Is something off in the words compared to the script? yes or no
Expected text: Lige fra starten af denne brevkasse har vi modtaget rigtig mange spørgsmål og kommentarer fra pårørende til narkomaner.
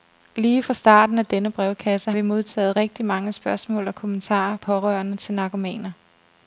yes